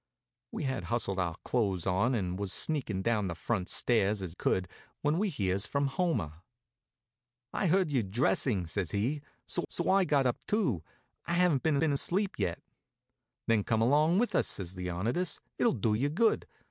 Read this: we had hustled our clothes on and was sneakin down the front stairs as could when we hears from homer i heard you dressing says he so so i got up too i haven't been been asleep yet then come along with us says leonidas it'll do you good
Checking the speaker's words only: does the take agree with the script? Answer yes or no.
yes